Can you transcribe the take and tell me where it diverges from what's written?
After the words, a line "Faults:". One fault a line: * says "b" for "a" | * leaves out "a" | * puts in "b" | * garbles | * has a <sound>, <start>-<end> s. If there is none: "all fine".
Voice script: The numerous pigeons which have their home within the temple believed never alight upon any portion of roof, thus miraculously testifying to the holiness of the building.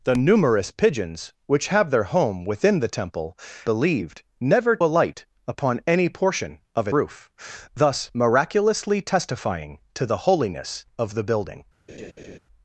The numerous pigeons which have their home within the temple believed never alight upon any portion of roof, thus miraculously testifying to the holiness of the building.
Faults:
* has a laugh, 11.9-12.4 s